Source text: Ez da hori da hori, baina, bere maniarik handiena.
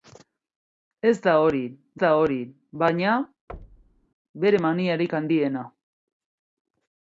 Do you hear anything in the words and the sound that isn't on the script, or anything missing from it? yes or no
yes